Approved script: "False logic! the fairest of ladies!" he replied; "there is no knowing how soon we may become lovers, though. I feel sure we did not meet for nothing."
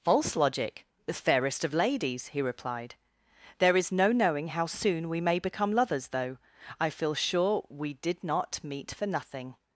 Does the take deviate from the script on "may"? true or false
false